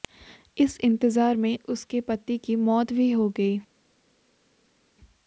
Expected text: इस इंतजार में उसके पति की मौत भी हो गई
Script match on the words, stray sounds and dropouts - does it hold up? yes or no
yes